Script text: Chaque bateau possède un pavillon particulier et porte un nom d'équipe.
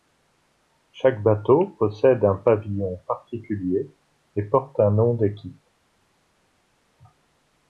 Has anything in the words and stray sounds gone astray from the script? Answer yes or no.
no